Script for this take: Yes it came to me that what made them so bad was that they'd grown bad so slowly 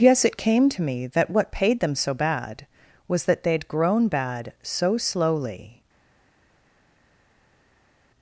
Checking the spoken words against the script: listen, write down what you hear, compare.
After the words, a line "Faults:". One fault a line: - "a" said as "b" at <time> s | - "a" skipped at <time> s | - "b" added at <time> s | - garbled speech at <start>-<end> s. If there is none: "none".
Yes it came to me that what paid them so bad was that they'd grown bad so slowly
Faults:
- "made" said as "paid" at 1.5 s